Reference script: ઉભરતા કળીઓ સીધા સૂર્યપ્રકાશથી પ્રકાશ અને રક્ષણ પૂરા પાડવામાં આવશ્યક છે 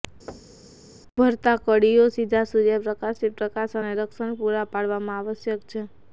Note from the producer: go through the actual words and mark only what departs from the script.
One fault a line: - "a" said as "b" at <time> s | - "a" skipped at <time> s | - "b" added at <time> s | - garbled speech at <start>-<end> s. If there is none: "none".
none